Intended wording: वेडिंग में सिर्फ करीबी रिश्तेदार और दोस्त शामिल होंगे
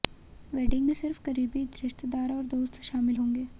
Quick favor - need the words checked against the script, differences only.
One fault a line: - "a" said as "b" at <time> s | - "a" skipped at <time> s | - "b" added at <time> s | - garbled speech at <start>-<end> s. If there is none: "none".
none